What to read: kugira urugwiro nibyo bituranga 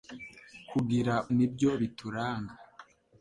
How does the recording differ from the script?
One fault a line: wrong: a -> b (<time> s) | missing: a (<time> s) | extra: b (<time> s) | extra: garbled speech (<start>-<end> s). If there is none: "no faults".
missing: urugwiro (1.1 s)